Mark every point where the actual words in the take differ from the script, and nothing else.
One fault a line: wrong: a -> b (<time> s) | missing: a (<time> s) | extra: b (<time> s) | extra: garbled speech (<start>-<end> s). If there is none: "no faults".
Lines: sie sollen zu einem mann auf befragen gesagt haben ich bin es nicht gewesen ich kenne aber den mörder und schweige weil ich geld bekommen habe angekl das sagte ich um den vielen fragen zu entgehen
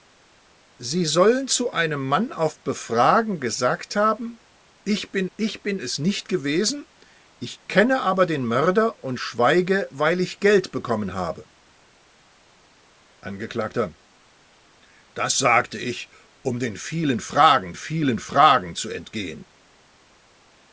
extra: ich bin (5.4 s)
extra: vielen fragen (17.8 s)